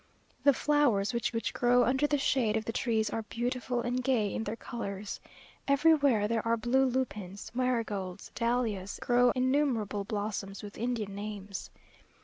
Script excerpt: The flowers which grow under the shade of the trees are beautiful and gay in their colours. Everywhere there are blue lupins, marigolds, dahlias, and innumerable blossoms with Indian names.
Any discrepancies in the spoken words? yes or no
yes